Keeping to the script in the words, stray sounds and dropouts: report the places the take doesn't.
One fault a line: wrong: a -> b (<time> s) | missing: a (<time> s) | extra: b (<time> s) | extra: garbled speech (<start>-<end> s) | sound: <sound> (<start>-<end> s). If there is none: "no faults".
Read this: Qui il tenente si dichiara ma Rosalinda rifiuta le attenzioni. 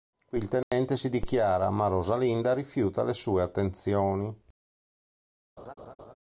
sound: dropout (0.6-0.7 s)
extra: sue (3.1 s)
sound: laugh (5.6-6.1 s)